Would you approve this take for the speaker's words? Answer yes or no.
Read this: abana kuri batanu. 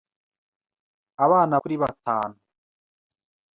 yes